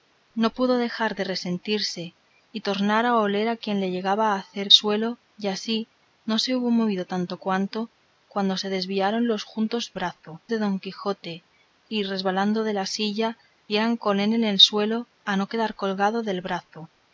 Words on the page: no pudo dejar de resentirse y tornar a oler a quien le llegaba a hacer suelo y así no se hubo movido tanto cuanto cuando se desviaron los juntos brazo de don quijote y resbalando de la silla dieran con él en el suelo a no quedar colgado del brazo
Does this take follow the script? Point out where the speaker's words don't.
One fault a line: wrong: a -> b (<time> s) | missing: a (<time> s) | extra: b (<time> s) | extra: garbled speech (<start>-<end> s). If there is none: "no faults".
no faults